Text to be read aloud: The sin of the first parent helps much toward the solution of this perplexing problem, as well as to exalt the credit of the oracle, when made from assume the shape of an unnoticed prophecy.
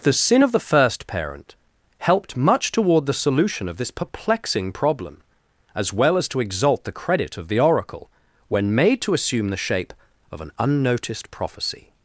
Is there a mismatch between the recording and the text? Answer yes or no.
yes